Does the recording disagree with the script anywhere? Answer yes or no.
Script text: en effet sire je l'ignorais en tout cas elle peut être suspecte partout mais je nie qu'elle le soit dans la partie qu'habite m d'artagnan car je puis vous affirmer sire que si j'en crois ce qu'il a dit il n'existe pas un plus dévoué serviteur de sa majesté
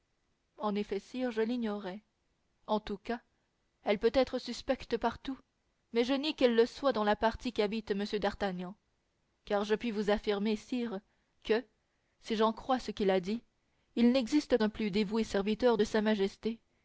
yes